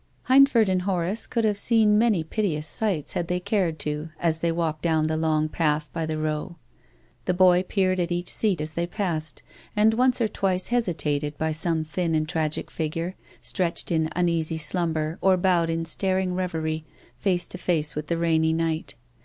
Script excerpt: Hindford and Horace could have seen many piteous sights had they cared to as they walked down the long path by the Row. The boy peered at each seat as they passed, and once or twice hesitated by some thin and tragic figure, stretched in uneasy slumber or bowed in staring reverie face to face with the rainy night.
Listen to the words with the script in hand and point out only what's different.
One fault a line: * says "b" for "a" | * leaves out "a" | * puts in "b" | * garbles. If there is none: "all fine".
all fine